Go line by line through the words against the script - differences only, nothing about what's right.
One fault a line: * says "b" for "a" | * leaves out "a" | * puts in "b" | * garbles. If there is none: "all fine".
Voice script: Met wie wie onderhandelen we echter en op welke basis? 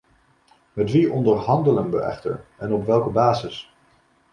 * leaves out "wie"